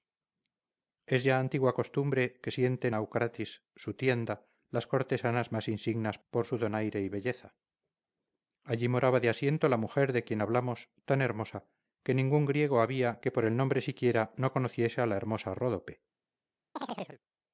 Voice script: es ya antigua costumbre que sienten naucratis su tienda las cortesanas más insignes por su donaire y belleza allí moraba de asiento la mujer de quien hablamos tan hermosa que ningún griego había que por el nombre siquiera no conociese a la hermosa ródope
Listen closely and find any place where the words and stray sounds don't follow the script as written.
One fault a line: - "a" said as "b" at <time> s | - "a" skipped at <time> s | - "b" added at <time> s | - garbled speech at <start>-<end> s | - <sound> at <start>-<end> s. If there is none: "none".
- chirp at 16.8-17.2 s